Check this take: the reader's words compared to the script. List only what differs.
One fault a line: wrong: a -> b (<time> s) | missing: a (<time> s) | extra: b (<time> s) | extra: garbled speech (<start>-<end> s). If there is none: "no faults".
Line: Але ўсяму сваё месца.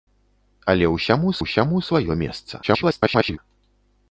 extra: ўсяму (1.4 s)
extra: garbled speech (2.6-3.4 s)